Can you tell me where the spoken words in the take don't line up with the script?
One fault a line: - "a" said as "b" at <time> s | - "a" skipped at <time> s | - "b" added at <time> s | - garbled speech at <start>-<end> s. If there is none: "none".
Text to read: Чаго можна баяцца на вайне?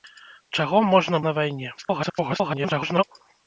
- "баяцца" skipped at 1.2 s
- garbled speech at 1.8-3.0 s